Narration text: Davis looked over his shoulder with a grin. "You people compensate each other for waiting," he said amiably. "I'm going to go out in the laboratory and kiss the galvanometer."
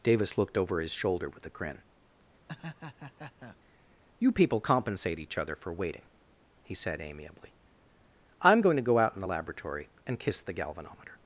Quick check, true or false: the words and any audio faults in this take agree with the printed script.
false